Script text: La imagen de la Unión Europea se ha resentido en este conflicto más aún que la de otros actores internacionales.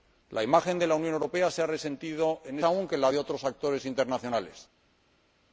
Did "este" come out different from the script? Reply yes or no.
yes